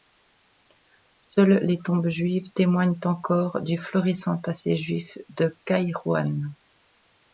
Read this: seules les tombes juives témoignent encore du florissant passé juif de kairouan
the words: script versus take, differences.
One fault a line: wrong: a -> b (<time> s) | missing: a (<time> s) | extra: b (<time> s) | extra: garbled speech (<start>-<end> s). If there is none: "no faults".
no faults